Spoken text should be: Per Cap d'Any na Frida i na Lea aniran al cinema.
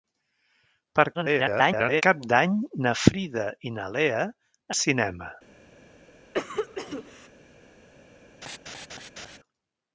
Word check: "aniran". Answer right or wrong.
wrong